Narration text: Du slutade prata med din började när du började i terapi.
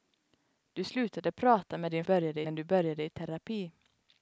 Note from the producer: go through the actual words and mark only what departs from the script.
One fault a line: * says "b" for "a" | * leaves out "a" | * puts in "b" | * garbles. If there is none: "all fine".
all fine